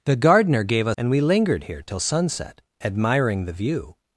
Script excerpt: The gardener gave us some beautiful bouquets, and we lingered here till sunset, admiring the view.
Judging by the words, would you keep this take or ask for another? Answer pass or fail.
fail